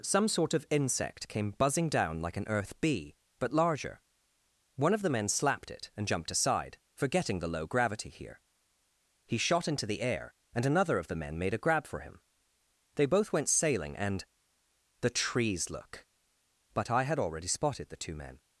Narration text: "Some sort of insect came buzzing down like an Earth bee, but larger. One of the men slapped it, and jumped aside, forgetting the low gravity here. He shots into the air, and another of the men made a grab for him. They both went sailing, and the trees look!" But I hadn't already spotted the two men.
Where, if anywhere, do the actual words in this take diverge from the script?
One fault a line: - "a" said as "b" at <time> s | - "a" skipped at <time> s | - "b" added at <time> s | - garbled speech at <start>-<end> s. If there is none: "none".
- "shots" said as "shot" at 9.4 s
- "hadn't" said as "had" at 17.0 s